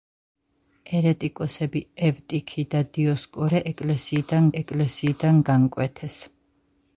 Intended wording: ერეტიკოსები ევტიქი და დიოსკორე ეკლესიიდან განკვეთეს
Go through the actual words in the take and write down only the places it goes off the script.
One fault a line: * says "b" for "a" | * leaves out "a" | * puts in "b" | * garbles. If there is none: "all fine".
* puts in "ეკლესიიდან"